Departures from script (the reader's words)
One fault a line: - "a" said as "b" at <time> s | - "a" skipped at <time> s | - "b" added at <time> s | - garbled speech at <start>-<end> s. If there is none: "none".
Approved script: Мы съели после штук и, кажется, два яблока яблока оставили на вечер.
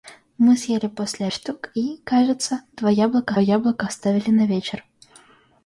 none